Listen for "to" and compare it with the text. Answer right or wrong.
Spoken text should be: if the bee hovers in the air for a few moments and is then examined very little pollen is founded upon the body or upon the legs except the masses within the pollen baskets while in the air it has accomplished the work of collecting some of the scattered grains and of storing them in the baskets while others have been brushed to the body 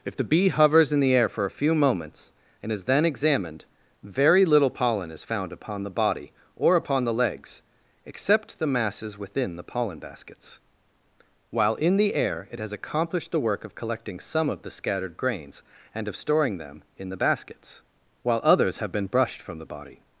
wrong